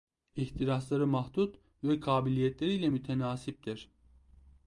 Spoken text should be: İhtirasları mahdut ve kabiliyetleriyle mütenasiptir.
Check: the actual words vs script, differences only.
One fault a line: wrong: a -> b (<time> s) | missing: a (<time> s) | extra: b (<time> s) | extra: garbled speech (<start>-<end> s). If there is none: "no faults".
no faults